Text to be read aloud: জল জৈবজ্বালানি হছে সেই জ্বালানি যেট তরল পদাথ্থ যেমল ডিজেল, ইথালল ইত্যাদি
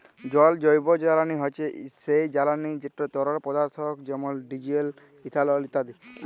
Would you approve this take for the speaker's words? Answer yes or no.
yes